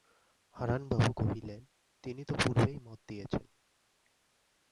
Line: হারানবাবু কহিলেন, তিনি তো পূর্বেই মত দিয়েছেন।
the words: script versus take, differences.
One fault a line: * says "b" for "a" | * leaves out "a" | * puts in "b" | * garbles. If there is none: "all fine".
all fine